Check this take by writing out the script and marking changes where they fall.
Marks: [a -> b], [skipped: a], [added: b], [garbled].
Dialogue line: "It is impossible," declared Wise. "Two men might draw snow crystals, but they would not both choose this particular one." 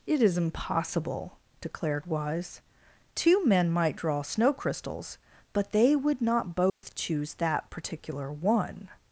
"It is impossible," declared Wise. "Two men might draw snow crystals, but they would not both choose [this -> that] particular one."